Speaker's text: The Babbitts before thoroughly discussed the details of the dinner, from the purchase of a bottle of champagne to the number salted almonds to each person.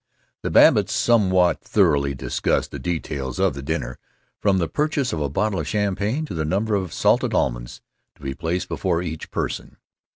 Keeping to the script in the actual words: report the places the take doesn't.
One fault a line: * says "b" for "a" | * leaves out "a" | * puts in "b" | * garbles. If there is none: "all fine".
* says "somewhat" for "before"
* puts in "of"
* puts in "be placed before"